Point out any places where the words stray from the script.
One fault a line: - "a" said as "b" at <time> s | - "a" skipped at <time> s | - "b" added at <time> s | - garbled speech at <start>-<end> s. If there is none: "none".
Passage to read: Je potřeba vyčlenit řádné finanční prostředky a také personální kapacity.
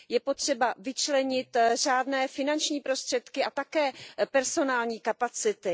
none